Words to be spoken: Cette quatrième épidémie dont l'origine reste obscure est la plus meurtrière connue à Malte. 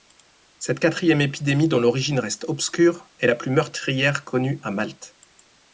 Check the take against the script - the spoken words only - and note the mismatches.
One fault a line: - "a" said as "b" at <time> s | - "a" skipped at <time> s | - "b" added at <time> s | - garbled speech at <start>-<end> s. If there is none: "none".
none